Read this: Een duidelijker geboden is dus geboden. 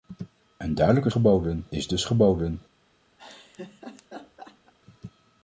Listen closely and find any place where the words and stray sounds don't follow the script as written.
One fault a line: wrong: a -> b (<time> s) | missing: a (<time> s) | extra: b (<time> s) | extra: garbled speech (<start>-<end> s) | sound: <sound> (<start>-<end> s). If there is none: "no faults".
sound: laugh (3.2-4.7 s)